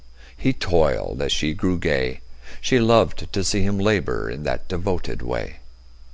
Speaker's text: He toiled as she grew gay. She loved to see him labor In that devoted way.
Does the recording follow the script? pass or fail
pass